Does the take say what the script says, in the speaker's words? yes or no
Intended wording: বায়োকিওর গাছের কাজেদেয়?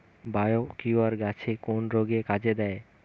no